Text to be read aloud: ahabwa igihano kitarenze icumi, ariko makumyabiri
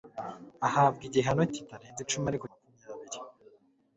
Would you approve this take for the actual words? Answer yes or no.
yes